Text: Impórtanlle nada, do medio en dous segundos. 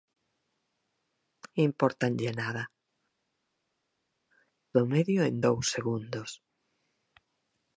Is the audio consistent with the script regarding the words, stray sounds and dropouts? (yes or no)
yes